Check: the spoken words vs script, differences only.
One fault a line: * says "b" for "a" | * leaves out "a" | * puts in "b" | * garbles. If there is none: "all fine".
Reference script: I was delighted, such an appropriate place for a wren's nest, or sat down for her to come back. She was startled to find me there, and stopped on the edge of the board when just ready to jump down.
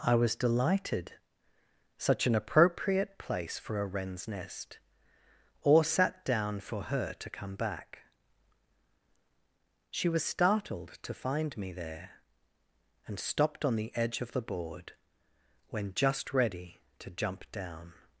all fine